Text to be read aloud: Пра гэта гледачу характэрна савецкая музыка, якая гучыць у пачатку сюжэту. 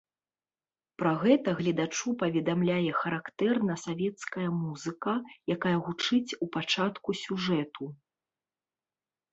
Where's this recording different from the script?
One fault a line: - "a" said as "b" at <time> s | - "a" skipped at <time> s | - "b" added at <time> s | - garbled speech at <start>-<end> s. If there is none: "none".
- "паведамляе" added at 2.2 s